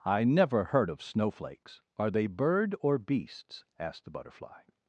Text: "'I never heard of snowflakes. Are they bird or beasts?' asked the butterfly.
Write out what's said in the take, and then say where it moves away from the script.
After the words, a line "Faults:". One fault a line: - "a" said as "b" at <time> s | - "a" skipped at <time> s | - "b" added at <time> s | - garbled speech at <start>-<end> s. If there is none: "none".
"'I never heard of snowflakes. Are they bird or beasts?' asked the butterfly.
Faults:
none